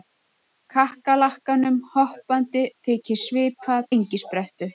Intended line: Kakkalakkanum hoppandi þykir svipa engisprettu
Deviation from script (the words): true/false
false